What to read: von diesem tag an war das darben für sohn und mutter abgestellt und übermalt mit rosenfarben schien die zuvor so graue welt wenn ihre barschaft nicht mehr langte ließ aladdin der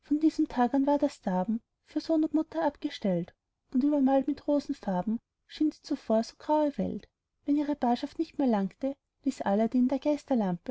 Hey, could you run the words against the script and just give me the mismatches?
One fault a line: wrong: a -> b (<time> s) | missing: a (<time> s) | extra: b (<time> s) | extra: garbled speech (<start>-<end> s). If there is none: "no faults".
no faults